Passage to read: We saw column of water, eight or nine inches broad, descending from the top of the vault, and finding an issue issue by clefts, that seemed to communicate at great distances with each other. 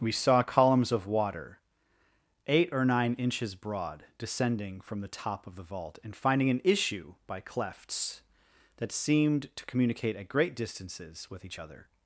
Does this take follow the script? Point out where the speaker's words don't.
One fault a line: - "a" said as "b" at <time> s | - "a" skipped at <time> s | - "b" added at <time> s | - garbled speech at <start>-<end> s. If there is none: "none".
- "column" said as "columns" at 0.4 s
- "issue" skipped at 7.1 s